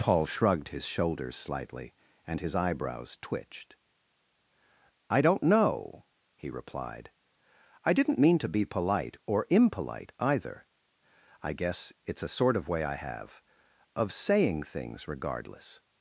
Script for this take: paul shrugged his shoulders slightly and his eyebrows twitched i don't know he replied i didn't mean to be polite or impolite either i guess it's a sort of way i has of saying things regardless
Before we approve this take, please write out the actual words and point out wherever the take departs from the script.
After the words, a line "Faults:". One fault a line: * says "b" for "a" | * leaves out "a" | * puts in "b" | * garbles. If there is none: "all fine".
paul shrugged his shoulders slightly and his eyebrows twitched i don't know he replied i didn't mean to be polite or impolite either i guess it's a sort of way i have of saying things regardless
Faults:
* says "have" for "has"